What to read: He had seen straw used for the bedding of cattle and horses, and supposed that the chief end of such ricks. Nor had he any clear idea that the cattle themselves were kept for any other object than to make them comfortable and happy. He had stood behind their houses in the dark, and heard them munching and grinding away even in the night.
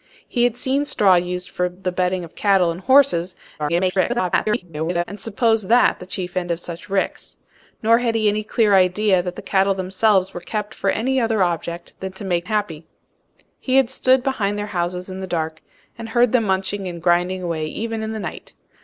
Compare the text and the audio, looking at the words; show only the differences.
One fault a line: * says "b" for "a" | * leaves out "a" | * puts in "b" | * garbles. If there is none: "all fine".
* garbles
* leaves out "them comfortable and"